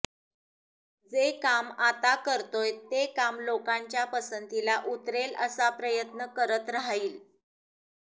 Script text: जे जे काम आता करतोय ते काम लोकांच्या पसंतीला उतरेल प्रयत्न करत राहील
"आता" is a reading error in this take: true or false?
false